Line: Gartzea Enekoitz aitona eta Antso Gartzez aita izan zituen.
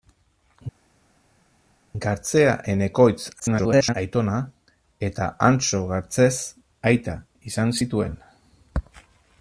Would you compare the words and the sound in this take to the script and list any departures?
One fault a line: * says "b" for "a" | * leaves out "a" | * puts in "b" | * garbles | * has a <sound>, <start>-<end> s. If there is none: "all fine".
* garbles